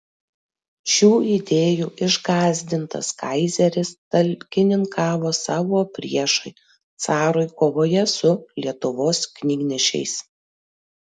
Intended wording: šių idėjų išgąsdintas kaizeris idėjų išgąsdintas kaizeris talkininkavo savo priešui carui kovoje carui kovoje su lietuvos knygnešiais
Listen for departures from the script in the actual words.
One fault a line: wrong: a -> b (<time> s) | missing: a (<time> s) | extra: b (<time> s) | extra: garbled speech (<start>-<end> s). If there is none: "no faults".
missing: idėjų išgąsdintas kaizeris (3.9 s)
missing: carui kovoje (8.1 s)